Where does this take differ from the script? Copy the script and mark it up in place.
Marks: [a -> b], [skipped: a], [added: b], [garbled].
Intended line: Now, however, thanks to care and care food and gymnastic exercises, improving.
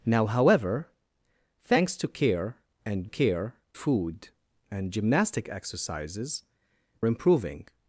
Now, however, thanks to care and care food and gymnastic exercises, improving.